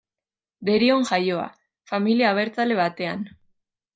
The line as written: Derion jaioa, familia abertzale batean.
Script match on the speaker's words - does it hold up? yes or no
yes